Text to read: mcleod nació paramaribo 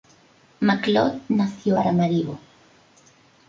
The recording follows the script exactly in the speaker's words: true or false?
true